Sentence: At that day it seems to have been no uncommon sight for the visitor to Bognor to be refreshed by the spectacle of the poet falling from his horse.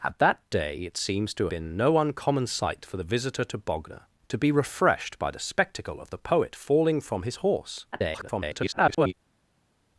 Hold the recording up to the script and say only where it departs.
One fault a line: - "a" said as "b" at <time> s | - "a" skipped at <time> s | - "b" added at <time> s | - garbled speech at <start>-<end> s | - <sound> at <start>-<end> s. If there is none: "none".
- "have" skipped at 1.5 s
- garbled speech at 7.9-9.1 s